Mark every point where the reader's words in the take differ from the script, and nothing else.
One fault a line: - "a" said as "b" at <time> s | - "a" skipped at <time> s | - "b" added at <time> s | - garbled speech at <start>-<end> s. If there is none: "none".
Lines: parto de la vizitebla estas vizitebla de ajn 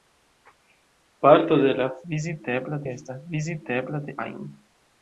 none